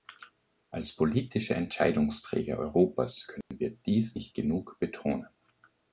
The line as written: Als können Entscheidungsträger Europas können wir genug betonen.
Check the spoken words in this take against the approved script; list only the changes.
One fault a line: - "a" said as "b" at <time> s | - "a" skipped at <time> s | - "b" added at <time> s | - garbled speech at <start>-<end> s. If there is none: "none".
- "können" said as "politische" at 0.9 s
- "dies nicht" added at 3.7 s